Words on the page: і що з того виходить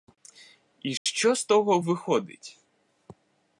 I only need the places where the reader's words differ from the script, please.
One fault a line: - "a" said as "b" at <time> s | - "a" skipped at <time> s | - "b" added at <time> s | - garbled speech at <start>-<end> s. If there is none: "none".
none